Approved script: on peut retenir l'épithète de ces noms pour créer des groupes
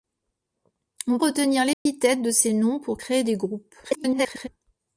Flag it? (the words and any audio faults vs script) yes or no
yes